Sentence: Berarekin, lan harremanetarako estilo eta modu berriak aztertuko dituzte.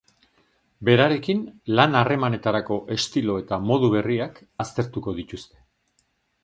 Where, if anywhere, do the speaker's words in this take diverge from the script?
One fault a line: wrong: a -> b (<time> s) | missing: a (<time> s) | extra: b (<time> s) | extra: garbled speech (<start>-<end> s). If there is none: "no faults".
no faults